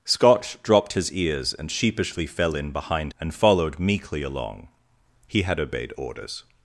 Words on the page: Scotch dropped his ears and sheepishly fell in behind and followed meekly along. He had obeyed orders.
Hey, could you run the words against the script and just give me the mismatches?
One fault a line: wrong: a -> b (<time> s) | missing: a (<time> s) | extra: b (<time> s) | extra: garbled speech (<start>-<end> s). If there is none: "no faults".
no faults